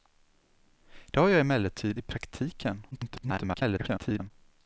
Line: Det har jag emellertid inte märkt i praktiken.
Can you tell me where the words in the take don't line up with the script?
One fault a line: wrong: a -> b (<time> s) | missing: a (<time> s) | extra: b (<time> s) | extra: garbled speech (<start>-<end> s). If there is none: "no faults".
missing: inte märkt (2.0 s)
extra: garbled speech (2.9-4.3 s)